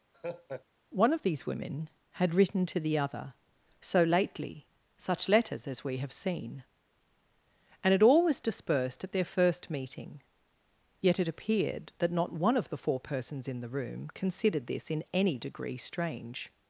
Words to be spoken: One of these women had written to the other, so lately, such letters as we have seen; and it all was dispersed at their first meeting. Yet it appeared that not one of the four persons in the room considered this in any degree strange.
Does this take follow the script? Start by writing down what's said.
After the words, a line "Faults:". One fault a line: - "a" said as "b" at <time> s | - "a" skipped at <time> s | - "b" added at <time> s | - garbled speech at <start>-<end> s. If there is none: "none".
One of these women had written to the other, so lately, such letters as we have seen; and it all was dispersed at their first meeting. Yet it appeared that not one of the four persons in the room considered this in any degree strange.
Faults:
none